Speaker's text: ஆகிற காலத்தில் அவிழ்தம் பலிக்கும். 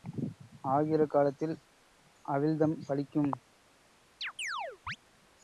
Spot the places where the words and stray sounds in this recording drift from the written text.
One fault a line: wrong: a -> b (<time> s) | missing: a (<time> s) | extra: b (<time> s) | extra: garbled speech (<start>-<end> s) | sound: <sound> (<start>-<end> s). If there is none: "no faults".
sound: chirp (4.2-5.0 s)